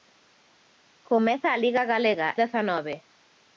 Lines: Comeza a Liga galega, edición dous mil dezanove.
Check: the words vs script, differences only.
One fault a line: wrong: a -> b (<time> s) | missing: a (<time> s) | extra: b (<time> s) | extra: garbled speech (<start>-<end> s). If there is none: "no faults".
missing: edición dous mil (2.3 s)